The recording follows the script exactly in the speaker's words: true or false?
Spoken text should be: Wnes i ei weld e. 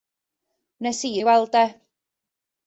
true